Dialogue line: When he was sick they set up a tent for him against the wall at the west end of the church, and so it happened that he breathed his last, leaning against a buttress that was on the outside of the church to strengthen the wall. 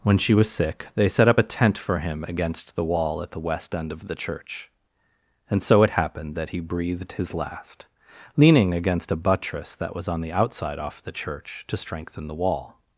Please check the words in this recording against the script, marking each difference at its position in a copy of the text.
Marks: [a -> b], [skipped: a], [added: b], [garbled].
When [he -> she] was sick they set up a tent for him against the wall at the west end of the church, and so it happened that he breathed his last, leaning against a buttress that was on the outside [of -> off] the church to strengthen the wall.